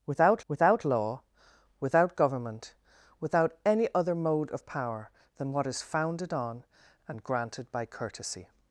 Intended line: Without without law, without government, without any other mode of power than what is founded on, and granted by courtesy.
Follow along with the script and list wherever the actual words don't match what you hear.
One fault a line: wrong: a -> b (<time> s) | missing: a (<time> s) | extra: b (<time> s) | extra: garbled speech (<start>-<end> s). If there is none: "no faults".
no faults